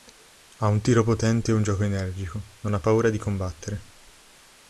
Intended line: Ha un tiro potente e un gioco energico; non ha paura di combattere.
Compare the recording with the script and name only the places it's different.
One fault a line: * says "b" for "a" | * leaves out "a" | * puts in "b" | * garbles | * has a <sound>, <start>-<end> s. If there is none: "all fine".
all fine